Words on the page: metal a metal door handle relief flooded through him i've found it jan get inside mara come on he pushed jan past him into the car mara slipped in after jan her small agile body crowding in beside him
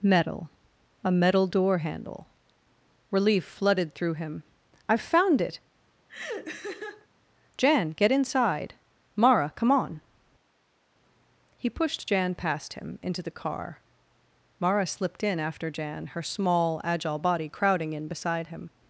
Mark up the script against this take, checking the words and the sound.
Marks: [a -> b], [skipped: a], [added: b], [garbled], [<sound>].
metal a metal door handle relief flooded through him i've found it [laugh] jan get inside mara come on he pushed jan past him into the car mara slipped in after jan her small agile body crowding in beside him